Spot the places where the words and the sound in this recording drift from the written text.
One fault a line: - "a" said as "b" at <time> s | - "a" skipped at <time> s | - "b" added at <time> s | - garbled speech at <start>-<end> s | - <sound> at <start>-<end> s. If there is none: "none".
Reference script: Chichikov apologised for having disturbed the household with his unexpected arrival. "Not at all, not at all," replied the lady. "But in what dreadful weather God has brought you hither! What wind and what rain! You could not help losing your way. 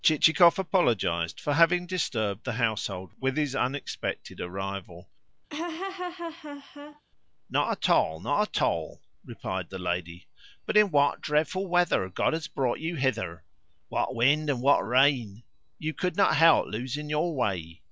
- laugh at 5.5-7.0 s